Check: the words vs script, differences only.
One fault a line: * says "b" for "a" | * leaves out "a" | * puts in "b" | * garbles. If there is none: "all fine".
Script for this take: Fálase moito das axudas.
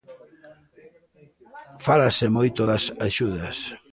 all fine